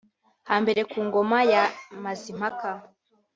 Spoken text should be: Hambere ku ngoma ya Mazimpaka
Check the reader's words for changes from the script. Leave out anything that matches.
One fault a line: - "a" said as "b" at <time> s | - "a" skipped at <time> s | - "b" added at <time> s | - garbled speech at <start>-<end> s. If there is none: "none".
none